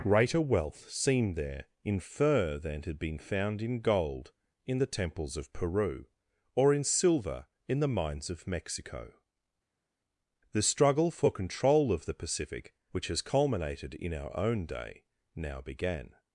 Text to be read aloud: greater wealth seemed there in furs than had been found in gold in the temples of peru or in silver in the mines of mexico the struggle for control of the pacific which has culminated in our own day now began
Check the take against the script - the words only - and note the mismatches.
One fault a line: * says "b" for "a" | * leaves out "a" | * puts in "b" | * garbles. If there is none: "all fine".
* says "fur" for "furs"